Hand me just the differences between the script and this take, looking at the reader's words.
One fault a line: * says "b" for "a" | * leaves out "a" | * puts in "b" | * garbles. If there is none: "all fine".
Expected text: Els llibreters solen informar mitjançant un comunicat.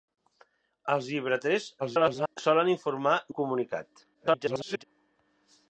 * garbles
* leaves out "mitjançant"
* garbles